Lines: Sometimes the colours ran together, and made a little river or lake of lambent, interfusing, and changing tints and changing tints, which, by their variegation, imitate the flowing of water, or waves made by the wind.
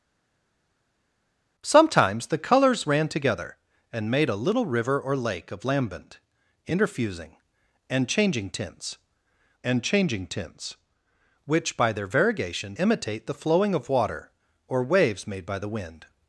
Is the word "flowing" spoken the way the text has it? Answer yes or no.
yes